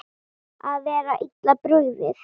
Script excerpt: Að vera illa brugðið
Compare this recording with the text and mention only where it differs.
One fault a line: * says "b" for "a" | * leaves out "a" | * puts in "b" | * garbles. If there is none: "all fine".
all fine